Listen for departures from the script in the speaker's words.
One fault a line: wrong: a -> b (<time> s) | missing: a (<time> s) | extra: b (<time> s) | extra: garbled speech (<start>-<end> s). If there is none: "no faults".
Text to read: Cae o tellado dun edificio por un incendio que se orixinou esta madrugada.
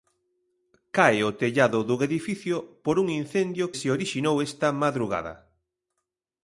missing: que (3.6 s)